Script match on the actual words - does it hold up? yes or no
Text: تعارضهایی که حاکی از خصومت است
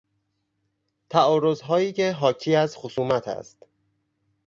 yes